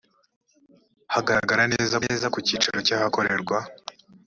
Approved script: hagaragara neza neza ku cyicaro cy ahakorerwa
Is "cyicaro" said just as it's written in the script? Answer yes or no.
yes